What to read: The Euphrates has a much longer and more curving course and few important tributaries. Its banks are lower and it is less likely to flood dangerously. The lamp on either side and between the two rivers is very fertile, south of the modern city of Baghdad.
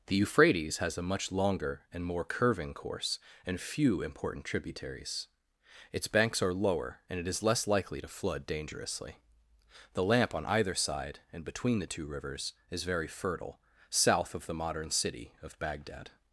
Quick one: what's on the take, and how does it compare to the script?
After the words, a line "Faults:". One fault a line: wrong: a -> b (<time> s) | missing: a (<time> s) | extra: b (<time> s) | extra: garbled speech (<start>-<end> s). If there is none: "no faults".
The Euphrates has a much longer and more curving course and few important tributaries. Its banks are lower and it is less likely to flood dangerously. The lamp on either side and between the two rivers is very fertile, south of the modern city of Baghdad.
Faults:
no faults